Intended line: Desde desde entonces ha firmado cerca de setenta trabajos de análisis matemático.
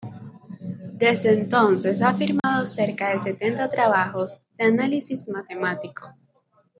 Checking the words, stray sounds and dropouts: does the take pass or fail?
fail